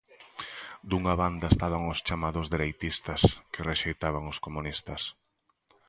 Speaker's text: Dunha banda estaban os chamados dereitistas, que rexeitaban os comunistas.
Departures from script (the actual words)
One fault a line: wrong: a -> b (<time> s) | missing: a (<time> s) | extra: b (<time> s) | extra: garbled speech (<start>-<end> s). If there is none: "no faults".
no faults